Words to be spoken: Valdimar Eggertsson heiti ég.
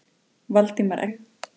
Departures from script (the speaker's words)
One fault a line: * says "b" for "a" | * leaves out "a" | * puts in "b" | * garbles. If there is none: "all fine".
* leaves out "Eggertsson heiti"